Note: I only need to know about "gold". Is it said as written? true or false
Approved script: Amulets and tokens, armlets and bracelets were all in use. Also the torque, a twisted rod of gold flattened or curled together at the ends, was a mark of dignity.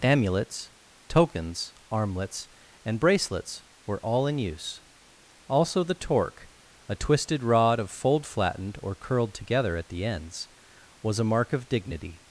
false